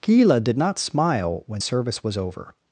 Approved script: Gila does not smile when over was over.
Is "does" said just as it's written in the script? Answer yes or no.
no